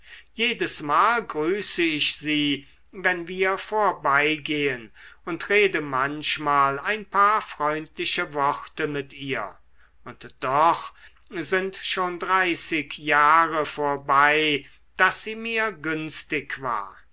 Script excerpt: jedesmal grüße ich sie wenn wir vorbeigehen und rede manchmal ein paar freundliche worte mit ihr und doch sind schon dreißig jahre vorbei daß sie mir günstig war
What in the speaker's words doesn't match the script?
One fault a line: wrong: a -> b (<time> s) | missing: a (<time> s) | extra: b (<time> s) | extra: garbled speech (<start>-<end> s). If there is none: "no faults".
no faults